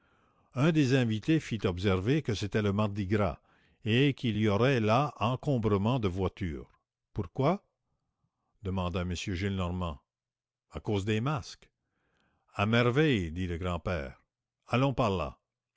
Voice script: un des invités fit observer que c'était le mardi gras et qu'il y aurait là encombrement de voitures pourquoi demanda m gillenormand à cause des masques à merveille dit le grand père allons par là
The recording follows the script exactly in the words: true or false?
true